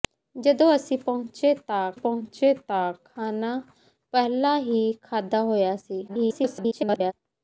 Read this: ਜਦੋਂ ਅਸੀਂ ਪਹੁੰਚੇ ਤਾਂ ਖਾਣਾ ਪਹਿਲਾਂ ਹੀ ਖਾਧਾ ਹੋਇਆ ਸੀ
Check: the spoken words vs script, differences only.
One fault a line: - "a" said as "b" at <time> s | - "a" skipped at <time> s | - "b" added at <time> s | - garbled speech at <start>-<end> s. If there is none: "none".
- "ਪਹੁੰਚੇ ਤਾਂ" added at 2.0 s
- garbled speech at 6.1-7.1 s